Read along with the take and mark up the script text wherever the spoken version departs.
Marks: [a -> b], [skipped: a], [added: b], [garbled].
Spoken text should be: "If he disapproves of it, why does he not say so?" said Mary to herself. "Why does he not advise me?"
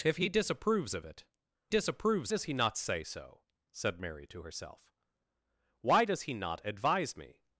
"If he disapproves of it, [why -> disapproves] does he not say so?" said Mary to herself. "Why does he not advise me?"